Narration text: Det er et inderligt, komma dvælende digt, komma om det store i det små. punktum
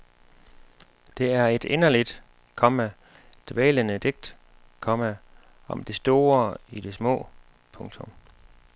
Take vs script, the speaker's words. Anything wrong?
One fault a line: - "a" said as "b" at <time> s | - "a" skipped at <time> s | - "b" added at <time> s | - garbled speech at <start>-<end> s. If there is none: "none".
none